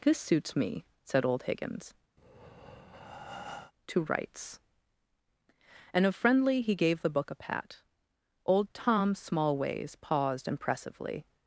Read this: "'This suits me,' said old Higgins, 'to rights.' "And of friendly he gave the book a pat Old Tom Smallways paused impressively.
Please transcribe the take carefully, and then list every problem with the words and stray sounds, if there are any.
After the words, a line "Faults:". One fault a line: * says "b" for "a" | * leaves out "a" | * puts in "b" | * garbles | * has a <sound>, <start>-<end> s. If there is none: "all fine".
"'This suits me,' said old Higgins, 'to rights.' "And of friendly he gave the book a pat Old Tom Smallways paused impressively.
Faults:
* has a breath, 2.2-3.7 s